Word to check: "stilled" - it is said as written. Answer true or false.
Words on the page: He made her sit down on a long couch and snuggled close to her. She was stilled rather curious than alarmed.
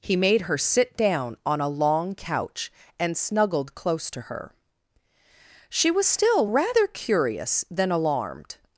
false